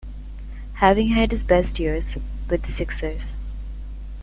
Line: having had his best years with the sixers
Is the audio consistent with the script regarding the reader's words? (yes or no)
yes